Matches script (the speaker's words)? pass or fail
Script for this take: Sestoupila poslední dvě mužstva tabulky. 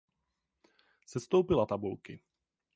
fail